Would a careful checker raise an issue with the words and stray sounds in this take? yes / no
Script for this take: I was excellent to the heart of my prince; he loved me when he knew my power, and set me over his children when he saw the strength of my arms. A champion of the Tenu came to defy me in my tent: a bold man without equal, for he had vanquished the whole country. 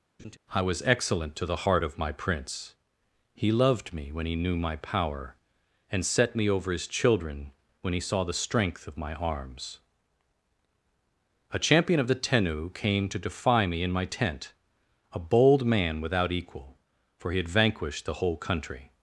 yes